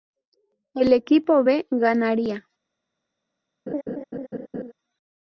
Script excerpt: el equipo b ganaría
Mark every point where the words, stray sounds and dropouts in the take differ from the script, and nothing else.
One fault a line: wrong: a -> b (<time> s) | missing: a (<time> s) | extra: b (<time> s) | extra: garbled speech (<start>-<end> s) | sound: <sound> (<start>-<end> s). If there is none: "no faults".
sound: laugh (3.7-4.7 s)